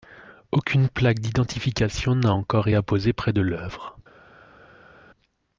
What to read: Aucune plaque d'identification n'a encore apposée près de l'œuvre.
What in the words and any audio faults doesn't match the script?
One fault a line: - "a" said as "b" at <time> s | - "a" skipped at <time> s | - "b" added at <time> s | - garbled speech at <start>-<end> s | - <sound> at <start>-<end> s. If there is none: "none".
none